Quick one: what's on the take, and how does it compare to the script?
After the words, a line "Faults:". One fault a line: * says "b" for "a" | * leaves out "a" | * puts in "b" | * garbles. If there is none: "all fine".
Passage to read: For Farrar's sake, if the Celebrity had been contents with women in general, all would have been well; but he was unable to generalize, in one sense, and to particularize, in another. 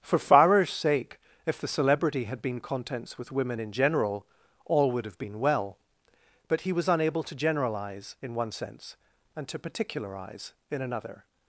For Farrar's sake, if the Celebrity had been contents with women in general, all would have been well; but he was unable to generalize, in one sense, and to particularize, in another.
Faults:
all fine